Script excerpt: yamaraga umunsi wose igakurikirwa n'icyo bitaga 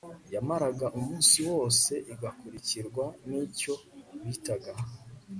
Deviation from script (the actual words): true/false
false